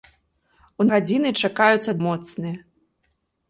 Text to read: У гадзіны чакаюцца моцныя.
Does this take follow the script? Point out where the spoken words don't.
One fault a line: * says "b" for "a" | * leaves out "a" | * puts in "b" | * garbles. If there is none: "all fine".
all fine